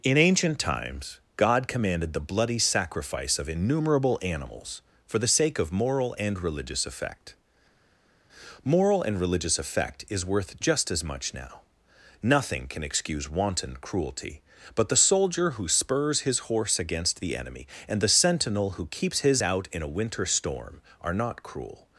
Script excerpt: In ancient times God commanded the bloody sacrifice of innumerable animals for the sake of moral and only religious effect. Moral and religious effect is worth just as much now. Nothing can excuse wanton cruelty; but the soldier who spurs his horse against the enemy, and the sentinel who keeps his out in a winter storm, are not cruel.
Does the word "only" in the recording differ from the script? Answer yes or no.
yes